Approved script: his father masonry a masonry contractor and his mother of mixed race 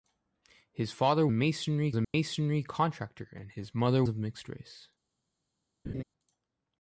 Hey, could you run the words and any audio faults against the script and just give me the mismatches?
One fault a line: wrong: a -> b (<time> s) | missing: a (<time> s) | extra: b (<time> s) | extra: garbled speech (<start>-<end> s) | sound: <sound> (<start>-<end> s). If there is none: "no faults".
sound: dropout (2.0-2.1 s)
sound: laugh (5.8-6.0 s)